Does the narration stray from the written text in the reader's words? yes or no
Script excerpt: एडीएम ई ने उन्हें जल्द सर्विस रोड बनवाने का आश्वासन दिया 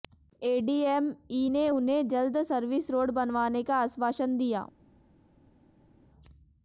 no